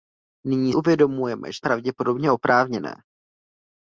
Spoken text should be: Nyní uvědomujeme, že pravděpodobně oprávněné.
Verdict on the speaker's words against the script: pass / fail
pass